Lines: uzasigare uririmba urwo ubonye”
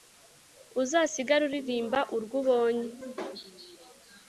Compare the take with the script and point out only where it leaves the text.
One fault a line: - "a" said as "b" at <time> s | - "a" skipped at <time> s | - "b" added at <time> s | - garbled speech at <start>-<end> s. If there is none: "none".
none